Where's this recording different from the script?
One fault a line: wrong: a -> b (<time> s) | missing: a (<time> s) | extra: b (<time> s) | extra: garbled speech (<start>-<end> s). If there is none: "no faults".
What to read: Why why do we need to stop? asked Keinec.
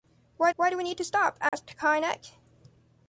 no faults